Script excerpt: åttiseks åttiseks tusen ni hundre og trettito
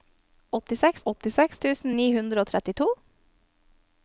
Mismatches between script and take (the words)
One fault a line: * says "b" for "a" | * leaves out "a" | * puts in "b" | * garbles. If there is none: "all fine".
all fine